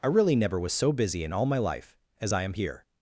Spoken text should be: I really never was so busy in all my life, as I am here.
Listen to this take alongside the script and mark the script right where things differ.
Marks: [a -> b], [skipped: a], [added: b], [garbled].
I really never was so busy in all my life, as I am here.